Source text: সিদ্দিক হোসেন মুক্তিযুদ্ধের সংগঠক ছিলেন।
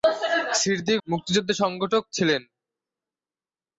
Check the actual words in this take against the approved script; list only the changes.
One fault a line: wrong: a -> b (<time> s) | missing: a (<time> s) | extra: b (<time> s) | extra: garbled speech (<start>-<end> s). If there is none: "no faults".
missing: হোসেন (1.0 s)